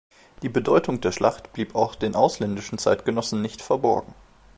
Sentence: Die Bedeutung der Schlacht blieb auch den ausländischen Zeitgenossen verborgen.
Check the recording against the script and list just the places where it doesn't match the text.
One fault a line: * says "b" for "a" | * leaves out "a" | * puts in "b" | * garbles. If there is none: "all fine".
* puts in "nicht"